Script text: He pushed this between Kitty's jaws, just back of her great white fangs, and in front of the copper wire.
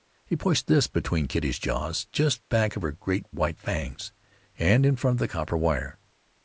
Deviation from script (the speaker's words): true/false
false